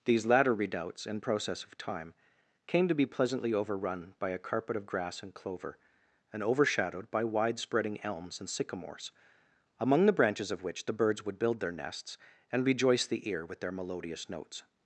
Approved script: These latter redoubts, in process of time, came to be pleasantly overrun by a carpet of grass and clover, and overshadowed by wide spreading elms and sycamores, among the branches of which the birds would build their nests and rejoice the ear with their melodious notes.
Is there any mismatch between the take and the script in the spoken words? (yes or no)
no